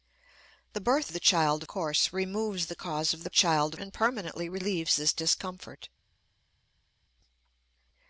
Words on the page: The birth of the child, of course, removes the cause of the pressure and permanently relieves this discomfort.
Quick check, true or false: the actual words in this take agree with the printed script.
false